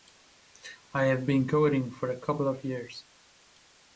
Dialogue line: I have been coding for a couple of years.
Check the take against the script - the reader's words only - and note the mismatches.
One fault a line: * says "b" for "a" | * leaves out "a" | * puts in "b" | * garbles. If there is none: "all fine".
all fine